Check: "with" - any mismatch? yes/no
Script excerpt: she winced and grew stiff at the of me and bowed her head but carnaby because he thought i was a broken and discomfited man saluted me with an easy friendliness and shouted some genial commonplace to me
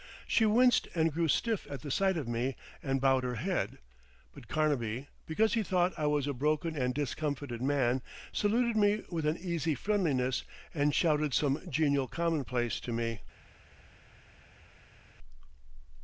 no